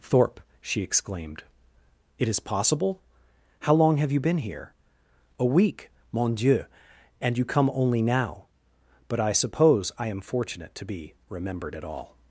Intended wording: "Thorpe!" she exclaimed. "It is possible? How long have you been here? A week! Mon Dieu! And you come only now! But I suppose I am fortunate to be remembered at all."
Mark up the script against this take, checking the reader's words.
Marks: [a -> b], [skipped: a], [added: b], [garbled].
"Thorpe!" she exclaimed. "It is possible? How long have you been here? A week! Mon Dieu! And you come only now! But I suppose I am fortunate to be remembered at all."